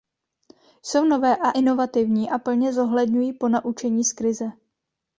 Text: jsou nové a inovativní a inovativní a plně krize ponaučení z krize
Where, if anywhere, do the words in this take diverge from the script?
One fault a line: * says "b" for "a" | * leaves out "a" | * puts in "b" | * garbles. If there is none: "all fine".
* leaves out "inovativní a"
* says "zohledňují" for "krize"